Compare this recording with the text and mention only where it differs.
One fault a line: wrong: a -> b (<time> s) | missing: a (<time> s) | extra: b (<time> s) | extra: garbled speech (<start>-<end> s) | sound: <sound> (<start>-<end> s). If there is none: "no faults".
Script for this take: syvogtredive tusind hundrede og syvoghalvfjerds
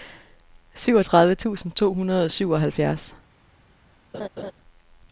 extra: to (1.8 s)
sound: laugh (4.1-4.5 s)